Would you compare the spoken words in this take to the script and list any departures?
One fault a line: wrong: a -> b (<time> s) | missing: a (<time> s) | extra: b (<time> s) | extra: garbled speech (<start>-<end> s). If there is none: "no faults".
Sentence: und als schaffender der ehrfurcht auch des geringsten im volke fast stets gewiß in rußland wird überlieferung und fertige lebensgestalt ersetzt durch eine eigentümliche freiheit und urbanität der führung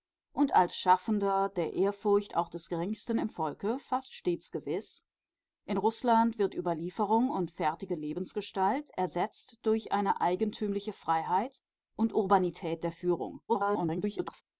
extra: garbled speech (13.5-14.4 s)